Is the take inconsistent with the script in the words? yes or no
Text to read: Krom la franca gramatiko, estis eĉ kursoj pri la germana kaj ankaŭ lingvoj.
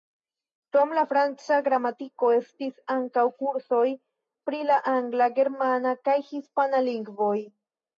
yes